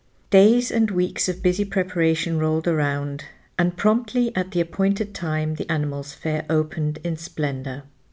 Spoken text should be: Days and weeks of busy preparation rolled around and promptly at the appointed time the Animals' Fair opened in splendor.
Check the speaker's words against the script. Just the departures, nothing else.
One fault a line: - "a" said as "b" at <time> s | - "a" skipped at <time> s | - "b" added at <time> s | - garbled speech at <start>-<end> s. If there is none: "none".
none